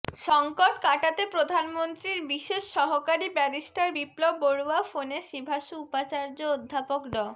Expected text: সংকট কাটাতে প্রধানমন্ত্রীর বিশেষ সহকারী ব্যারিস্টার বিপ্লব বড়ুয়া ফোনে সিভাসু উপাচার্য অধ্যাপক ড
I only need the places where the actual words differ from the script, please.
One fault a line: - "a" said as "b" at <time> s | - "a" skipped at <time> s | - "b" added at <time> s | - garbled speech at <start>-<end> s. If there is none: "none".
none